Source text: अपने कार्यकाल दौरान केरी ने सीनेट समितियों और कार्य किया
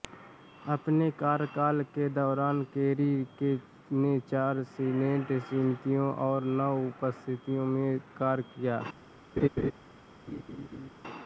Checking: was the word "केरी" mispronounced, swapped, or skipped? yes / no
no